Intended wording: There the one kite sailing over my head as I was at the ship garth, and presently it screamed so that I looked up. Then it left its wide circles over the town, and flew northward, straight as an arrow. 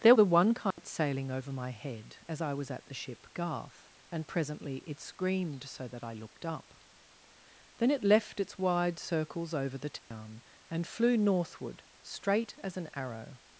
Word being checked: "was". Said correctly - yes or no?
yes